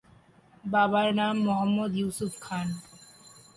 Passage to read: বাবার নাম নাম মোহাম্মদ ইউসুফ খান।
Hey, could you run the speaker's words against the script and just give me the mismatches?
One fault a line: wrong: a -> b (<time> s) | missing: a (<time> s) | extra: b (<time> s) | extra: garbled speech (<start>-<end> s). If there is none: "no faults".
missing: নাম (1.4 s)